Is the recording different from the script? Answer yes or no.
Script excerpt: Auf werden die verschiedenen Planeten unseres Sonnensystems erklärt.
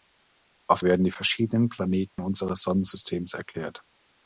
no